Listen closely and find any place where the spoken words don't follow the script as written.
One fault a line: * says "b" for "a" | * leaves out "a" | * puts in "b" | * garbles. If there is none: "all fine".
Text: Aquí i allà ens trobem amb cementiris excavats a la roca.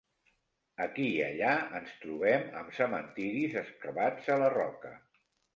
all fine